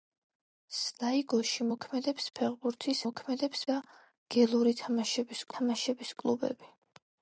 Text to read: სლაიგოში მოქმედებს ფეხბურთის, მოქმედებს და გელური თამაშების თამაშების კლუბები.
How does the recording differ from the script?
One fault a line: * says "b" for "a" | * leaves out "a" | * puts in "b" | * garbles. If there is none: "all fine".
all fine